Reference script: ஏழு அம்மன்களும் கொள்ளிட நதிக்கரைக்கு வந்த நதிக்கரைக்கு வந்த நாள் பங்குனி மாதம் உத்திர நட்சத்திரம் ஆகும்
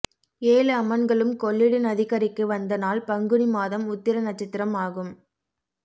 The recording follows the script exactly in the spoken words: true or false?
false